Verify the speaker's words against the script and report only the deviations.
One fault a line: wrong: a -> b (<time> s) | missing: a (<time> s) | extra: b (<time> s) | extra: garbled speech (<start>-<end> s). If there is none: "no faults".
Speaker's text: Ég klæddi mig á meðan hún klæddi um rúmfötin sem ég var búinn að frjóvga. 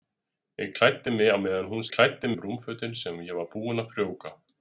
no faults